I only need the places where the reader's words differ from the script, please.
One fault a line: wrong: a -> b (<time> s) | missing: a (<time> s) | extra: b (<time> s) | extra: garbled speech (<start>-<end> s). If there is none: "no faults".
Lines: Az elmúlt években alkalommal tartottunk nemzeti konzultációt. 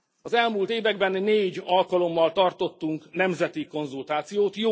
extra: négy (1.1 s)